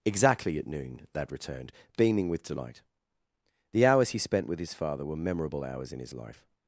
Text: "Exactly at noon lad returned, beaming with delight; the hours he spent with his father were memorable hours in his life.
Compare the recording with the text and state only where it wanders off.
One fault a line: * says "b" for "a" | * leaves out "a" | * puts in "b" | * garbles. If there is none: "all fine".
all fine